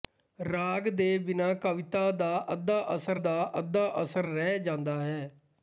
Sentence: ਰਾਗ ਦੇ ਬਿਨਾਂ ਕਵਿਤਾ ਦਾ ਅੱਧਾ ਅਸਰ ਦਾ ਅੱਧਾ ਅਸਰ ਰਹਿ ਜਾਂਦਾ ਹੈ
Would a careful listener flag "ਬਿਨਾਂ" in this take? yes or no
no